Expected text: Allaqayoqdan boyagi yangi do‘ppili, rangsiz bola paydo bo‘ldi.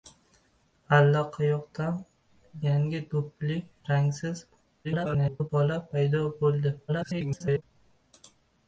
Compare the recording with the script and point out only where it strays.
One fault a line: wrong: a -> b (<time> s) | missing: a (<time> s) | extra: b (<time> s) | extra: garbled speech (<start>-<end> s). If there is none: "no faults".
missing: boyagi (2.0 s)
extra: garbled speech (4.8-5.5 s)
extra: garbled speech (6.9-7.6 s)